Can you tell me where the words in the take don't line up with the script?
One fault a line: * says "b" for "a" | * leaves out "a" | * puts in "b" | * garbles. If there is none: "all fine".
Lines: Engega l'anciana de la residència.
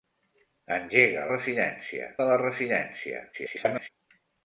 * says "residència" for "l'anciana"
* garbles